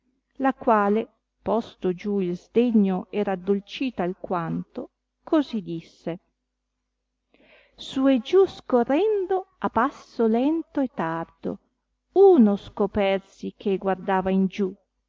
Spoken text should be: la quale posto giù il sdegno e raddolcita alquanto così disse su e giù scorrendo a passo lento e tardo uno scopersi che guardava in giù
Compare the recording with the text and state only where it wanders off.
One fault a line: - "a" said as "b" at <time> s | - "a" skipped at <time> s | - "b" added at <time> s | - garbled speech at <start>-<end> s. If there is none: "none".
none